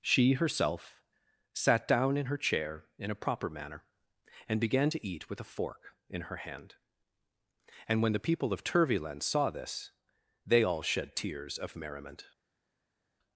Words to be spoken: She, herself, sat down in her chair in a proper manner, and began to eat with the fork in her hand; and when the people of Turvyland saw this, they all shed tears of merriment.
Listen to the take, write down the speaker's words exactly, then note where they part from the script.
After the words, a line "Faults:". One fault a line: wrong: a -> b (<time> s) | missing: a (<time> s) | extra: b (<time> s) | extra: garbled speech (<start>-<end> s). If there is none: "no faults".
She, herself, sat down in her chair in a proper manner, and began to eat with a fork in her hand; and when the people of Turvyland saw this, they all shed tears of merriment.
Faults:
wrong: the -> a (5.4 s)